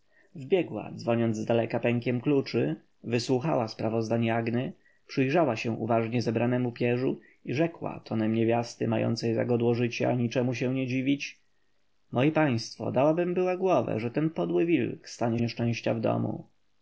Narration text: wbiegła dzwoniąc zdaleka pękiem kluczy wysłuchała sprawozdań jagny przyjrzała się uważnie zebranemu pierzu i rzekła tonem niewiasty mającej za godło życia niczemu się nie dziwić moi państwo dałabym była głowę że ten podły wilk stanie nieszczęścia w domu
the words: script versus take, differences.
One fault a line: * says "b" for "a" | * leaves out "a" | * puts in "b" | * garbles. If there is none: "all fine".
all fine